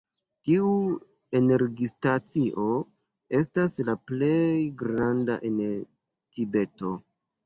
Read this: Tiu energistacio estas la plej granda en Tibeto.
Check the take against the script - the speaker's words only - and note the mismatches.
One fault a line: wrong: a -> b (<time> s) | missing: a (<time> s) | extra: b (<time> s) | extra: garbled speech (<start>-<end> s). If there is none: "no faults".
no faults